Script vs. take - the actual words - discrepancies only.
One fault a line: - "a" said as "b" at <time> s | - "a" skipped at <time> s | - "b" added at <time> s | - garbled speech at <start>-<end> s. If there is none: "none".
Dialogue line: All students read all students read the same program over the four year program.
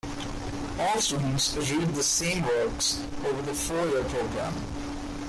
- "all students read" skipped at 1.9 s
- "program" said as "works" at 2.4 s